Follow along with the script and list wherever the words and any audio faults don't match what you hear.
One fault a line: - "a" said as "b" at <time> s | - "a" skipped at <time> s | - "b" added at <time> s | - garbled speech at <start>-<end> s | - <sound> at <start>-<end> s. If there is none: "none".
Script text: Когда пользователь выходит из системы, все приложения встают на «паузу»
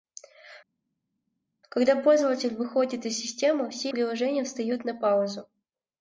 none